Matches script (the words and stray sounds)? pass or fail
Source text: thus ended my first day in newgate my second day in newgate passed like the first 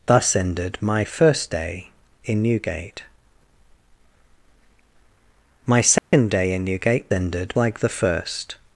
fail